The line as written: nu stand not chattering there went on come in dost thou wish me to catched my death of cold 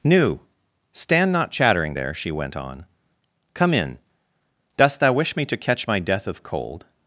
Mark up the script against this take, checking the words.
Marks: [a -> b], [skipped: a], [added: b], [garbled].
nu stand not chattering there [added: she] went on come in dost thou wish me to [catched -> catch] my death of cold